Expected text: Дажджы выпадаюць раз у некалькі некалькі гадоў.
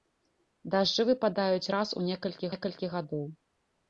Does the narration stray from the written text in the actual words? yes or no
no